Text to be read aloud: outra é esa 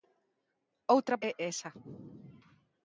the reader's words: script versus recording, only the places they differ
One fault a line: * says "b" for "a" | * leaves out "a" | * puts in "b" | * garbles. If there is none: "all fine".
all fine